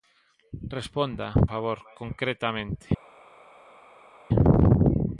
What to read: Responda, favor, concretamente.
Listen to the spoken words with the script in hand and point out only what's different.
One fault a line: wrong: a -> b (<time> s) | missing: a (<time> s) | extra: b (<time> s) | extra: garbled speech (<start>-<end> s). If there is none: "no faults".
no faults